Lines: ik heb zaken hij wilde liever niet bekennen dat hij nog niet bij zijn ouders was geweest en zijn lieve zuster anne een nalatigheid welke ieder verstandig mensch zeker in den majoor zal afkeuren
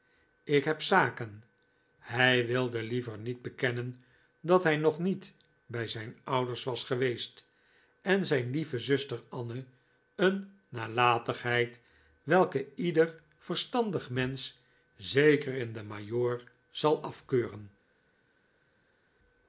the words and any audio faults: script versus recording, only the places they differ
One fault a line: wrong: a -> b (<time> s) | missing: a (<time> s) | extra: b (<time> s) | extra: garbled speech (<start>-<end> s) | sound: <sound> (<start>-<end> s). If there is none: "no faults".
no faults